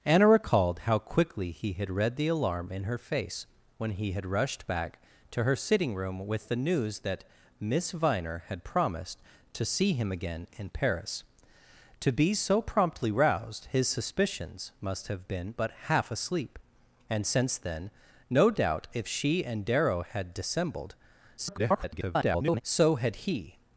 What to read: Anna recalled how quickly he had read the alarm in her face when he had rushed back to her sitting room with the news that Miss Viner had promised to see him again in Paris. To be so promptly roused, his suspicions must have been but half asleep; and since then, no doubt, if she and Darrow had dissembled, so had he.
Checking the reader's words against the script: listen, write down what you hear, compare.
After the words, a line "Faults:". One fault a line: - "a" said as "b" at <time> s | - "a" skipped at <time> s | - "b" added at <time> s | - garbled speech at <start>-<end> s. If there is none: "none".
Anna recalled how quickly he had read the alarm in her face when he had rushed back to her sitting room with the news that Miss Viner had promised to see him again in Paris. To be so promptly roused, his suspicions must have been but half asleep; and since then, no doubt, if she and Darrow had dissembled, [garbled] so had he.
Faults:
- garbled speech at 21.4-22.6 s